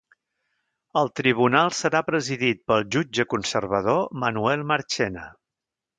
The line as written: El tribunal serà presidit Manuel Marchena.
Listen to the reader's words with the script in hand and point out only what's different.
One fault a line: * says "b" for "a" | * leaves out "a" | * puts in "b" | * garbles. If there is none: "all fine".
* puts in "pel jutge conservador"